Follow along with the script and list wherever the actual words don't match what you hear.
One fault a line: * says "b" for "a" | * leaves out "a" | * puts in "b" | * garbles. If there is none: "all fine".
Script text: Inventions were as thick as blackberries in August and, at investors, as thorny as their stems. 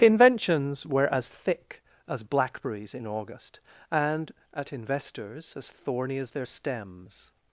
all fine